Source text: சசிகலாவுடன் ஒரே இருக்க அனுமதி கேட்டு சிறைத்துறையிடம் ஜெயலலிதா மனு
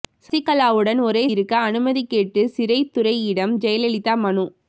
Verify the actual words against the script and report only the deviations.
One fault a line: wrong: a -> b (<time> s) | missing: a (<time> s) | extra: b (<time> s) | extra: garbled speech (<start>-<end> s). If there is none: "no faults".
no faults